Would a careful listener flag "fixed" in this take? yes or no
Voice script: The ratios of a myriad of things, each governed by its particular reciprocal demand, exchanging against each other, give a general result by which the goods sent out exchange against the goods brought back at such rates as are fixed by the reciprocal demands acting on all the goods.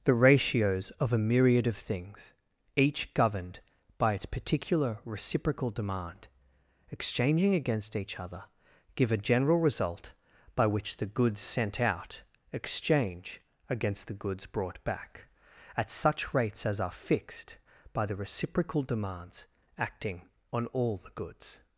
no